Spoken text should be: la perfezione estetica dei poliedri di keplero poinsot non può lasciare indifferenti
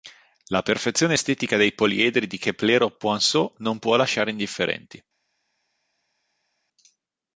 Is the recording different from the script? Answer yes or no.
no